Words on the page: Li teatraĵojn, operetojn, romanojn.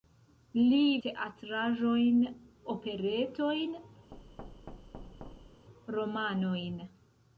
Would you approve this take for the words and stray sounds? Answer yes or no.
no